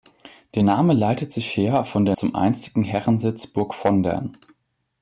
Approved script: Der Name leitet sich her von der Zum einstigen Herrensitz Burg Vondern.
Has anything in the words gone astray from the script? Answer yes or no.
no